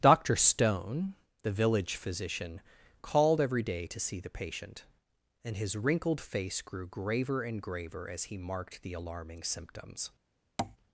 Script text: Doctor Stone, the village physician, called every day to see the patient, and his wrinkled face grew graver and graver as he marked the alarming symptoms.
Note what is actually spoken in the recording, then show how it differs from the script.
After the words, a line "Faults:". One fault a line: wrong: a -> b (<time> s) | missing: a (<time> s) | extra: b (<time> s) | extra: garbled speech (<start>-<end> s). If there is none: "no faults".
Doctor Stone, the village physician, called every day to see the patient, and his wrinkled face grew graver and graver as he marked the alarming symptoms.
Faults:
no faults